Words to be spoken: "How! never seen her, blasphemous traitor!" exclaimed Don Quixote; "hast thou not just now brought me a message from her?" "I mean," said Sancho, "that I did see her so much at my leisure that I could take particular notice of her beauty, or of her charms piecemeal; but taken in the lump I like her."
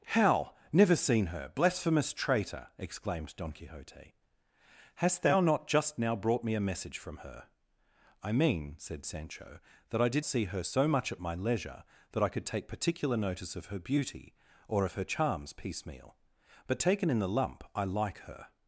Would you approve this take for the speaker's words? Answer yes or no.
yes